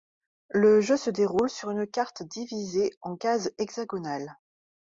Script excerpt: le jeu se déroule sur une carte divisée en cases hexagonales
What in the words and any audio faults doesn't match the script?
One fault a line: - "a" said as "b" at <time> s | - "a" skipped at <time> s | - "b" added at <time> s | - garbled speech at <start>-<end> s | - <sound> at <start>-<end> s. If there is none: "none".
none